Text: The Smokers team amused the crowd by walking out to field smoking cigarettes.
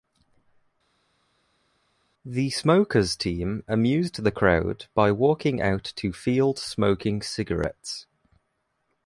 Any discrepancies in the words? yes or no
no